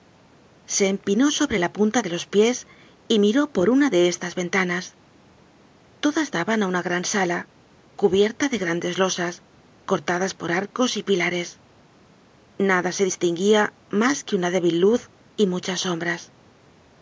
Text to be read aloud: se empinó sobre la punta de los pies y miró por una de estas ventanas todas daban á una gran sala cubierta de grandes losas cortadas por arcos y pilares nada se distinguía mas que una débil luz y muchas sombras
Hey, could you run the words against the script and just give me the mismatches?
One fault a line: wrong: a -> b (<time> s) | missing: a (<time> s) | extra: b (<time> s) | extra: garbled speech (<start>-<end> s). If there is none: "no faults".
no faults